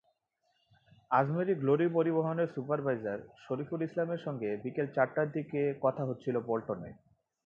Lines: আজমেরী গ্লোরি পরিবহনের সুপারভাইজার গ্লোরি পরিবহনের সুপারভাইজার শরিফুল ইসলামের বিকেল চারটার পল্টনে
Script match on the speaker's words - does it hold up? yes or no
no